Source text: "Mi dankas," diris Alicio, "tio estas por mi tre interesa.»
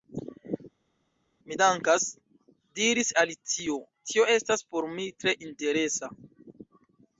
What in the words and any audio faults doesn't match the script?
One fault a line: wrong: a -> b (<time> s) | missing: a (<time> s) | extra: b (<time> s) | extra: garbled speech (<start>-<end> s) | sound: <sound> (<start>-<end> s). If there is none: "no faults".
no faults